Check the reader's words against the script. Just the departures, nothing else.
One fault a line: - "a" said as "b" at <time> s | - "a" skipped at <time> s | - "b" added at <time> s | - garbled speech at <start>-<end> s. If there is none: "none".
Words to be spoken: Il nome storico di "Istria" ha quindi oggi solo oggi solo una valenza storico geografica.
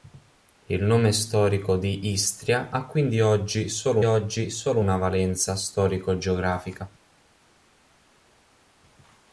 none